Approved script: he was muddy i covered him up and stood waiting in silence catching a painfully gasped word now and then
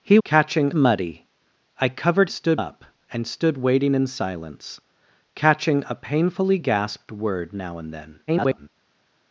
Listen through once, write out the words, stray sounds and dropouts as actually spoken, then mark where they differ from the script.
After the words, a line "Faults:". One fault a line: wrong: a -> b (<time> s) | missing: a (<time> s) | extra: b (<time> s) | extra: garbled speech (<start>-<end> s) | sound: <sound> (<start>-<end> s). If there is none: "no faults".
he catching muddy i covered stood up and stood waiting in silence catching a painfully gasped word now and then [garbled]
Faults:
wrong: was -> catching (0.2 s)
wrong: him -> stood (2.3 s)
extra: garbled speech (8.3-8.7 s)